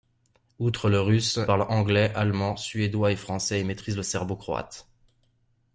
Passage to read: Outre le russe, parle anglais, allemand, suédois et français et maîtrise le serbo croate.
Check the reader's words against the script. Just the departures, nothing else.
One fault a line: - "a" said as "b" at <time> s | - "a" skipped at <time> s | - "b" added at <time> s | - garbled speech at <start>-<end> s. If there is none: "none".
none